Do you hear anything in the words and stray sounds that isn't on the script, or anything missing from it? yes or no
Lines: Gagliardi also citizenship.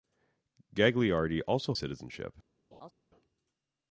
yes